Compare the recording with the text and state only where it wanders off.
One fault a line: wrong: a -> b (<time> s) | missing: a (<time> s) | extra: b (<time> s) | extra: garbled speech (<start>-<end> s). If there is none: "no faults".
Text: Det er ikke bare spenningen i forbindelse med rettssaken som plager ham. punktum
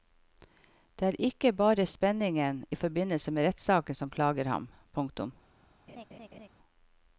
no faults